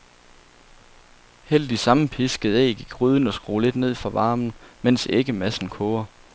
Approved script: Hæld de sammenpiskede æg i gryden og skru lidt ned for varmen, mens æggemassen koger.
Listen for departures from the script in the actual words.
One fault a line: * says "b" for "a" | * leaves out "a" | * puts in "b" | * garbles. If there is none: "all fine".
all fine